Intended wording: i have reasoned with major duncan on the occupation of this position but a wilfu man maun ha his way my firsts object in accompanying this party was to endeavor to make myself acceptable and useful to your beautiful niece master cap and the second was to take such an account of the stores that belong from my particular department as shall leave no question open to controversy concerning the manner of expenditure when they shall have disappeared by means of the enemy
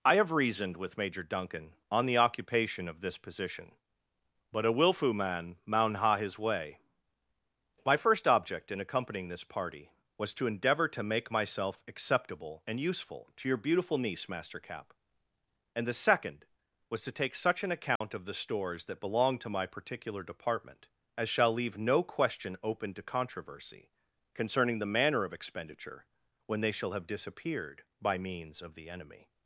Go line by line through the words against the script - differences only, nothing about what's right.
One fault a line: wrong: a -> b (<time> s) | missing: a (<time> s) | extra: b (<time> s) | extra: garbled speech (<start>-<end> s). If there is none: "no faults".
wrong: firsts -> first (8.0 s)
wrong: from -> to (19.4 s)